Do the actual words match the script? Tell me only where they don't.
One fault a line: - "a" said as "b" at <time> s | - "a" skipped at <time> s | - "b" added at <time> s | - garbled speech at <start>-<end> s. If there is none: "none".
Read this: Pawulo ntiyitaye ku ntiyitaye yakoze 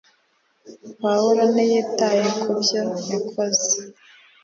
- "ntiyitaye" said as "byo" at 2.6 s